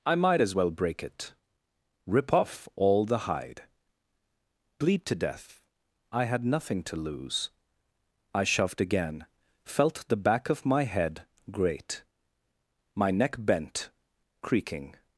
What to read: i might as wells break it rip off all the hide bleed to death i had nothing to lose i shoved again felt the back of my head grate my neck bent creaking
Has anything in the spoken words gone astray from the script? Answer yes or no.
yes